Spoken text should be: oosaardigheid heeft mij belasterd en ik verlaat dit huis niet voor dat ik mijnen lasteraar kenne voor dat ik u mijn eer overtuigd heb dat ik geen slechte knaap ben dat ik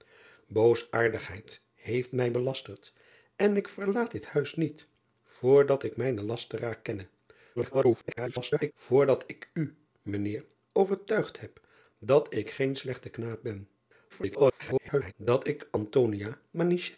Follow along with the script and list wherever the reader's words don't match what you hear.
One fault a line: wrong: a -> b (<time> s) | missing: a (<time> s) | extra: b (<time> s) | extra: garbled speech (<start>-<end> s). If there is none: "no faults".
extra: garbled speech (7.6-8.7 s)
extra: garbled speech (14.1-15.1 s)